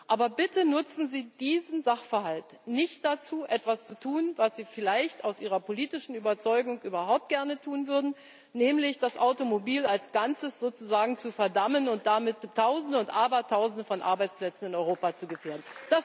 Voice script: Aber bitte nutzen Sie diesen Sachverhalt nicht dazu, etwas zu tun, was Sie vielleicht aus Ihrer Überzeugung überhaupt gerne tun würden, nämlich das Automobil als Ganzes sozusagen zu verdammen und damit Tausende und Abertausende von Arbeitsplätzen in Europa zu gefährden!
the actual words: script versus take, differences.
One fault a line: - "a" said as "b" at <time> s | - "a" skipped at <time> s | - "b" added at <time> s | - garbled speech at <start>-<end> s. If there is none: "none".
- "politischen" added at 5.6 s